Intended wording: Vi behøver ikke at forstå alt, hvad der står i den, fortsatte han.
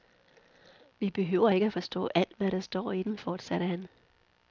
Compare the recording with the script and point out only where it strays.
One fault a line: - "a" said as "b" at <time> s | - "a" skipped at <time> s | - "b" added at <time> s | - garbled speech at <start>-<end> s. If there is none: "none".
none